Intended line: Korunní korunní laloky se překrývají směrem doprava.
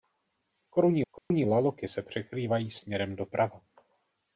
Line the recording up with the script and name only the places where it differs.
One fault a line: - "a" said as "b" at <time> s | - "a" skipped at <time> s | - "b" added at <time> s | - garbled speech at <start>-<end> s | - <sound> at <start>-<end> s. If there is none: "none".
- dropout at 1.2-1.3 s